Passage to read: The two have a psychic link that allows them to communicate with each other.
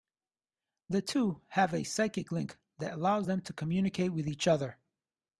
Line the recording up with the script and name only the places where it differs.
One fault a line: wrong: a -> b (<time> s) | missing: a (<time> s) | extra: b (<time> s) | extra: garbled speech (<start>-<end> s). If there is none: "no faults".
no faults